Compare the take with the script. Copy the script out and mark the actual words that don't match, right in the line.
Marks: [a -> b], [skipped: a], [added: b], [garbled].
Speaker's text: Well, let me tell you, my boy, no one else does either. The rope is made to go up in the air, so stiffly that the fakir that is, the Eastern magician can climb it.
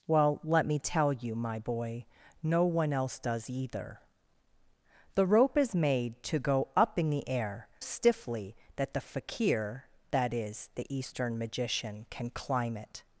Well, let me tell you, my boy, no one else does either. The rope is made to go up in the air, [skipped: so] stiffly that the fakir that is, the Eastern magician can climb it.